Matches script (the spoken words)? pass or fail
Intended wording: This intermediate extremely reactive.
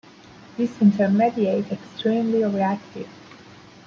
pass